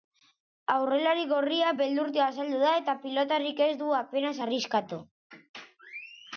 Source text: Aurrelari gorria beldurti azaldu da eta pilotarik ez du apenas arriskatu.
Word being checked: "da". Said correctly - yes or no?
yes